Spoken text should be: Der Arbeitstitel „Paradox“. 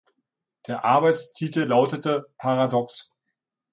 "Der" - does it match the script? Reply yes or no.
yes